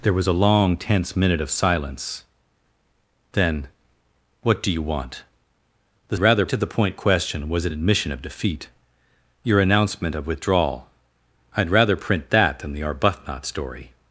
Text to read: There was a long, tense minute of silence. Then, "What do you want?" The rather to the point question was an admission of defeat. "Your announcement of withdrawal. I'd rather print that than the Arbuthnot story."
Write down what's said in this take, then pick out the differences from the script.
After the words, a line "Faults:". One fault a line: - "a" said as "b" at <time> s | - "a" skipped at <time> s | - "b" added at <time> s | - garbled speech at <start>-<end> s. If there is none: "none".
There was a long, tense minute of silence. Then, "What do you want?" The rather to the point question was an admission of defeat. "Your announcement of withdrawal. I'd rather print that than the Arbuthnot story."
Faults:
none